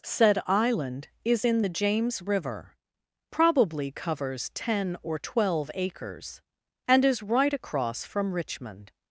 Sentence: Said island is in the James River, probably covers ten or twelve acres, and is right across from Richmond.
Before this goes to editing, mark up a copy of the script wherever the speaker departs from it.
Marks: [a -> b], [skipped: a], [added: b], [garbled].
Said island is in the James River, probably covers ten or twelve acres, and is right across from Richmond.